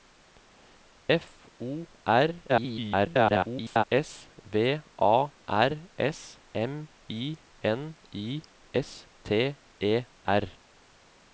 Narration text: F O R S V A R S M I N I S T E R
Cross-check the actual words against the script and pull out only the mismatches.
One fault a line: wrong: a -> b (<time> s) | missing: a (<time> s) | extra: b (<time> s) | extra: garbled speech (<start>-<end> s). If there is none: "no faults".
extra: garbled speech (2.5-3.8 s)